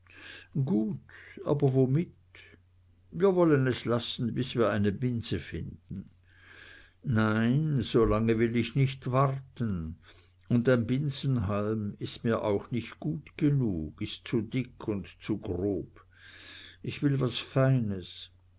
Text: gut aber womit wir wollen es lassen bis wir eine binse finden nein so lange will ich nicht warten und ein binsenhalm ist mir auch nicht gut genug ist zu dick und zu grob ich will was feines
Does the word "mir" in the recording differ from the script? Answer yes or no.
no